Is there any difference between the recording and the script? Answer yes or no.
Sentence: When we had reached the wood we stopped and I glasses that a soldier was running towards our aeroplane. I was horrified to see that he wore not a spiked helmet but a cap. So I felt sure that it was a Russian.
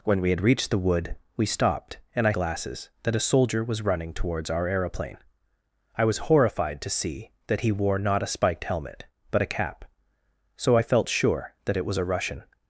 no